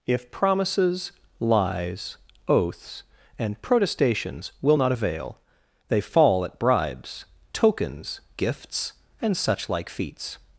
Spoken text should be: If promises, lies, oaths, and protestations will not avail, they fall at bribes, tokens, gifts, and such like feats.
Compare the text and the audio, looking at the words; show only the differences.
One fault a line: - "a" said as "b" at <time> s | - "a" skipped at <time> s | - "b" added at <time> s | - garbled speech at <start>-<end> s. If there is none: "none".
none